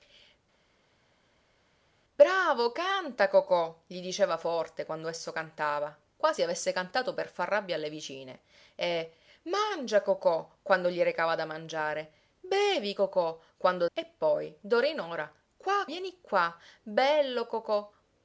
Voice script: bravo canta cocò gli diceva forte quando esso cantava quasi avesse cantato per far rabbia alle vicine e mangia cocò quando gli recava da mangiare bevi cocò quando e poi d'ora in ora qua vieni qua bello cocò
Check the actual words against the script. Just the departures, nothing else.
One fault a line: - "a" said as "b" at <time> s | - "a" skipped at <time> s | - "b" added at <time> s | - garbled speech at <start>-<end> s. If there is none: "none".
none